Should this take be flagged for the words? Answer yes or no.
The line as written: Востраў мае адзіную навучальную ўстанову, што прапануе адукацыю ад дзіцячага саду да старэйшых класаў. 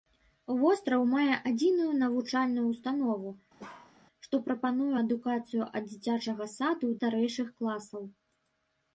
yes